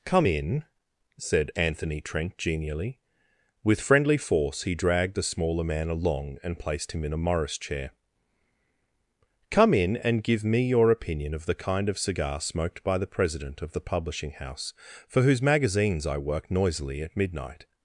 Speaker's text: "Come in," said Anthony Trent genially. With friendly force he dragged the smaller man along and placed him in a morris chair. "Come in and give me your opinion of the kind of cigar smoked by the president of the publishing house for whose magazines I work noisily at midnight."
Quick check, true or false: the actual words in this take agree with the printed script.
true